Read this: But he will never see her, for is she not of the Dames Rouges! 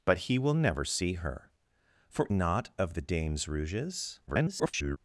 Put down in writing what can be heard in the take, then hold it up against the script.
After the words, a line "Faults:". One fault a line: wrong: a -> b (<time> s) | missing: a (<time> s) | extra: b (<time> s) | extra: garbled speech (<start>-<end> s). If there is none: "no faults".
But he will never see her, for not of the Dames Rouges! [garbled]
Faults:
missing: is she (2.3 s)
extra: garbled speech (4.3-5.0 s)